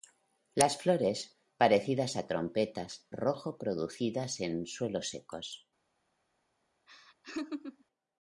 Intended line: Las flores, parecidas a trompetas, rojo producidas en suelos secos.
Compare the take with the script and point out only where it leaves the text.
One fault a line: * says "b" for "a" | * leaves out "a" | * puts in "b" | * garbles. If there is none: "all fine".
all fine